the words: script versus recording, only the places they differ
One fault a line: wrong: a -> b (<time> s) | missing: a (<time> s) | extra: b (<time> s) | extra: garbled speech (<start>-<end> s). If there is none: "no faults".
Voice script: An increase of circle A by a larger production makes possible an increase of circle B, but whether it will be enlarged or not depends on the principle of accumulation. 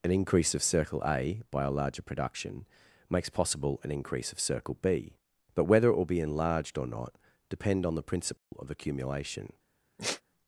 wrong: depends -> depend (7.5 s)